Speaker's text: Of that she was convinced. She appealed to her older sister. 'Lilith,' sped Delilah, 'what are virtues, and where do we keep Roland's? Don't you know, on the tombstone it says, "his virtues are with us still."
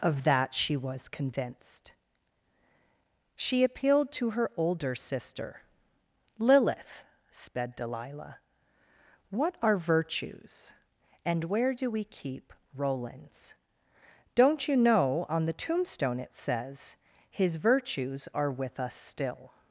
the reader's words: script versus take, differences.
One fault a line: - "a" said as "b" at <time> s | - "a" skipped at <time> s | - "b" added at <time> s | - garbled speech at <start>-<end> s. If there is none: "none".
none